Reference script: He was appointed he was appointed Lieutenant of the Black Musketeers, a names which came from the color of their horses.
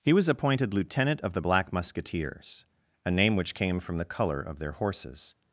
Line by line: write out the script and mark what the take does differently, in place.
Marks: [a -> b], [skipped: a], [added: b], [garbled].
He was appointed [skipped: he was appointed] Lieutenant of the Black Musketeers, a [names -> name] which came from the color of their horses.